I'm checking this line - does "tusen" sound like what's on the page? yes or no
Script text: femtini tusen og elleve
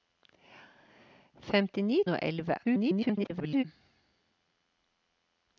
no